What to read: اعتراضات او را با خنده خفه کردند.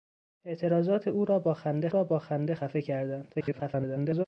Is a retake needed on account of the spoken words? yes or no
yes